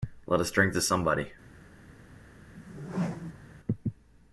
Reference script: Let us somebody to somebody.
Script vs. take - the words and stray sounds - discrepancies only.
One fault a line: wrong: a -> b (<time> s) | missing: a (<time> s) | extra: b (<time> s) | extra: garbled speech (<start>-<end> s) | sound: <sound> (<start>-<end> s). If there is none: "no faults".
wrong: somebody -> drink (0.5 s)
sound: whoosh (2.5-3.6 s)